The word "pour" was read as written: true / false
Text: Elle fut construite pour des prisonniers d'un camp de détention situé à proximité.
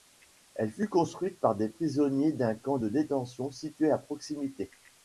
false